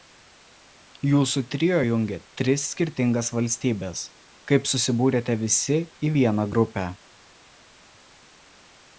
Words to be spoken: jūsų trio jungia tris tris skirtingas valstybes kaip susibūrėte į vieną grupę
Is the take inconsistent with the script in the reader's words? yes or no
yes